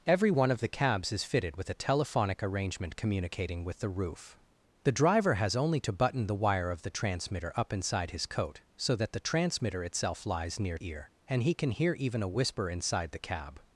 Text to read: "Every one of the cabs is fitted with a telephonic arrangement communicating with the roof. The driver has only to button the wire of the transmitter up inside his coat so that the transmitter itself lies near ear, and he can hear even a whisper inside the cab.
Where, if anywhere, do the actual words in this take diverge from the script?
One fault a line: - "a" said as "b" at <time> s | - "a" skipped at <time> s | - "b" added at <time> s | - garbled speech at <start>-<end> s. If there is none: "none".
none